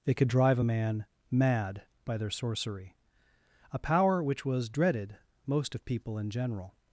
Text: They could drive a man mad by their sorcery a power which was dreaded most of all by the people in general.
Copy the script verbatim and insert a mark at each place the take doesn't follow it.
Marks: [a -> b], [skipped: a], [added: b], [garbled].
They could drive a man mad by their sorcery a power which was dreaded most of [skipped: all by the] people in general.